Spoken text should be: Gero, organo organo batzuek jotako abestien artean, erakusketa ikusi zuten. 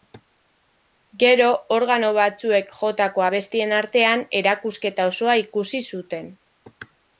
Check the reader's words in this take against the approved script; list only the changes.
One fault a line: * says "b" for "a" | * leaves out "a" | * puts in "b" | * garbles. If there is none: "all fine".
* leaves out "organo"
* puts in "osoa"